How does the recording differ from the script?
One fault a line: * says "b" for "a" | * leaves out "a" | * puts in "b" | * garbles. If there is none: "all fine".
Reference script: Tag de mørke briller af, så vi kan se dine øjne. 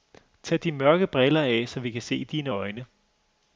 all fine